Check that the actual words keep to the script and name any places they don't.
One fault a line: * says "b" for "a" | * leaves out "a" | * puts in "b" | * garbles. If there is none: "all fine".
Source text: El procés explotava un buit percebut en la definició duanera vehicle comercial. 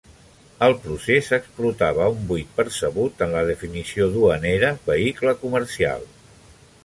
all fine